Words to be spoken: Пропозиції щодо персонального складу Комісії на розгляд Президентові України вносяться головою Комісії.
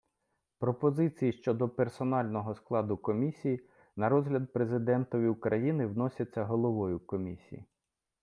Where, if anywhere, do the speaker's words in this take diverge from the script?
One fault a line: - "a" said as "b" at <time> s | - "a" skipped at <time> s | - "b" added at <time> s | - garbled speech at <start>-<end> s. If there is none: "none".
none